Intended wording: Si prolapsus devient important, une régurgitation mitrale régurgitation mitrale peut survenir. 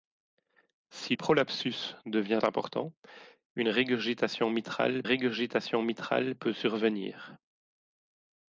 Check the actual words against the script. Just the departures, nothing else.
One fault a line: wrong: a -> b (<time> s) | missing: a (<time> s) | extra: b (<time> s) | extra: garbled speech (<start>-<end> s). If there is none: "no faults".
no faults